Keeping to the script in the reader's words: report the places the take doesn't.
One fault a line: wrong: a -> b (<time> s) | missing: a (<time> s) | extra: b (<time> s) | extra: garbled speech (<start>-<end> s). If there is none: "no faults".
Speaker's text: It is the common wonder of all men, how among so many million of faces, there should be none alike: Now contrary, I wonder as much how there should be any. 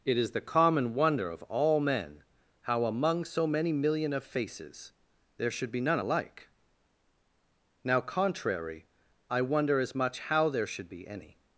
no faults